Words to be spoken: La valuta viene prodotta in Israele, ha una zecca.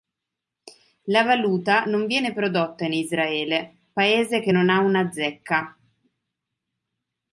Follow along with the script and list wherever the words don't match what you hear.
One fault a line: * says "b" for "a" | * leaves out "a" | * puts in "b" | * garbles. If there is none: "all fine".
* puts in "non"
* puts in "paese che non"